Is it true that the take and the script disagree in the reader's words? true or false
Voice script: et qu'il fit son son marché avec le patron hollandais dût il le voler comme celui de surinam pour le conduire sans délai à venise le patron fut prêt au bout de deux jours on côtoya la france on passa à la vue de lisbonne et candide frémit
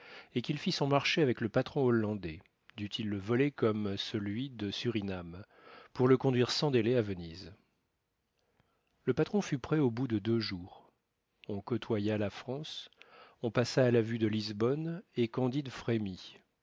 true